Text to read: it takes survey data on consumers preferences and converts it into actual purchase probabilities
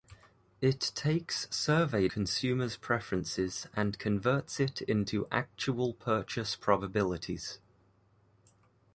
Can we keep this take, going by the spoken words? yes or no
no